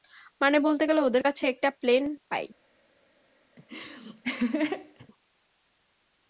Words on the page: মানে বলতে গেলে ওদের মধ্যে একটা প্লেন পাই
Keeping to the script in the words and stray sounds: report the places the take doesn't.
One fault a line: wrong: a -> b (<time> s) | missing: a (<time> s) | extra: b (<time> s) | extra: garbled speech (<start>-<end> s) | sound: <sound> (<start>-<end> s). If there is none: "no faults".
wrong: মধ্যে -> কাছে (1.2 s)
sound: laugh (3.6-5.1 s)